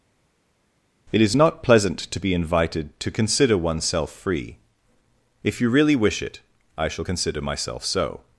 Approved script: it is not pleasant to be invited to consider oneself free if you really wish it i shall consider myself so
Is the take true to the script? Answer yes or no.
yes